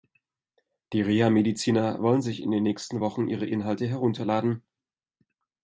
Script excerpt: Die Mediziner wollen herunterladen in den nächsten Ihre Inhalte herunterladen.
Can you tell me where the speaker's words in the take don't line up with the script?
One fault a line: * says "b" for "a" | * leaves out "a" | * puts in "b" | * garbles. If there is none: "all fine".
* puts in "Reha"
* says "sich" for "herunterladen"
* puts in "Wochen"